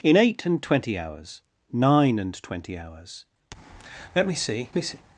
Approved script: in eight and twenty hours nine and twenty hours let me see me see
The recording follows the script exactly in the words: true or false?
true